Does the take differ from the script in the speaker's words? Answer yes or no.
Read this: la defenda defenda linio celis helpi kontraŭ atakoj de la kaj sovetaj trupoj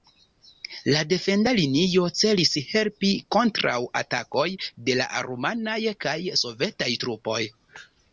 yes